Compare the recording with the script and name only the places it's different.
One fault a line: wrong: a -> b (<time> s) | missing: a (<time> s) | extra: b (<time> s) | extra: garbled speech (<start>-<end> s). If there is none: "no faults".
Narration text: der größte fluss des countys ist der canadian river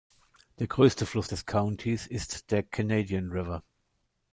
no faults